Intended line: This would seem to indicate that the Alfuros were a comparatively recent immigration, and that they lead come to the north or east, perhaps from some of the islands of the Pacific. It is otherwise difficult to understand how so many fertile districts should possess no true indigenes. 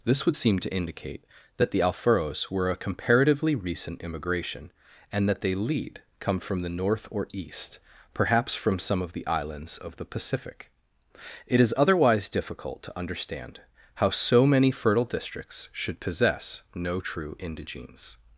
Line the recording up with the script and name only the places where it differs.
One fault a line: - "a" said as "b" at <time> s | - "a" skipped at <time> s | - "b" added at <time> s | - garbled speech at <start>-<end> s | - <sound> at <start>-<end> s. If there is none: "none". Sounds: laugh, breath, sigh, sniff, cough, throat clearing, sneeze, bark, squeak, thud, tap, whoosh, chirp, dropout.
- "to" said as "from" at 6.4 s